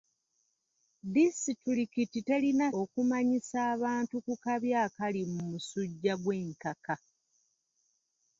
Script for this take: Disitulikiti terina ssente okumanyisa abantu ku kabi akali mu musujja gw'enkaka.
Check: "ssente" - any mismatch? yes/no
yes